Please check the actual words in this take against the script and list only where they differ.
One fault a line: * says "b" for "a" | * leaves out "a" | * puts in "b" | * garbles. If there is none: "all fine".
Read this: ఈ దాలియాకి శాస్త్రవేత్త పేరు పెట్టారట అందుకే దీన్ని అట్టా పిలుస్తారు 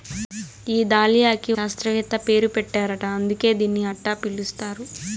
all fine